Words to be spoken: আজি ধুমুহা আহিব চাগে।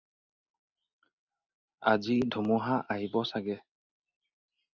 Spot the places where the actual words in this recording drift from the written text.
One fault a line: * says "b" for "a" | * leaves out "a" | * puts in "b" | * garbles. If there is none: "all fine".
all fine